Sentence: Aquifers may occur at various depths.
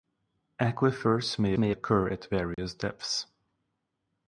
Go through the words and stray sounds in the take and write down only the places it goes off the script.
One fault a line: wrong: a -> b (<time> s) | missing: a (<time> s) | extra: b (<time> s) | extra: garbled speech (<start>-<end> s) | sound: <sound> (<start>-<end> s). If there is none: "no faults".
extra: may (1.6 s)
sound: dropout (2.5-2.6 s)